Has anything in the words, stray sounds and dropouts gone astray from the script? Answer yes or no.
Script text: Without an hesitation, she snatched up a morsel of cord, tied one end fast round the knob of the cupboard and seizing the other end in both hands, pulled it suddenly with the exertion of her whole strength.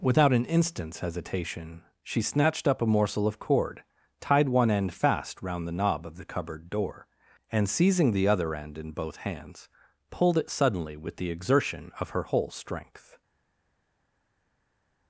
yes